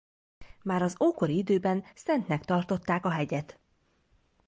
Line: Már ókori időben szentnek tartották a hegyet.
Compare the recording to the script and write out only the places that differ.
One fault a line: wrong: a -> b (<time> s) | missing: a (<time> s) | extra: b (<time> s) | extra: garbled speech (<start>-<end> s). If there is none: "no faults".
extra: az (0.8 s)